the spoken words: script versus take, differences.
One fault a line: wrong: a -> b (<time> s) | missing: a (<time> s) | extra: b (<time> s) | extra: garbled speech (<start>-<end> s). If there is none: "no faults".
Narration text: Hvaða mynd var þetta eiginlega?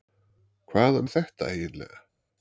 missing: mynd (1.0 s)